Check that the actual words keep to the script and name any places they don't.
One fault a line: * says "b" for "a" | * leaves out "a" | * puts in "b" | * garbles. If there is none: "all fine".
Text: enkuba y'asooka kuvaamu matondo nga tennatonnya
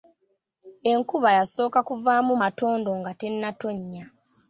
all fine